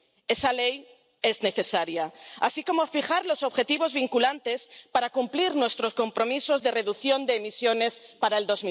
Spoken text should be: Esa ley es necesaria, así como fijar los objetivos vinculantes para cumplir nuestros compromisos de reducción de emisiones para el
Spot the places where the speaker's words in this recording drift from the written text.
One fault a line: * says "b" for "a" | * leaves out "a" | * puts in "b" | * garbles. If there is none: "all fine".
all fine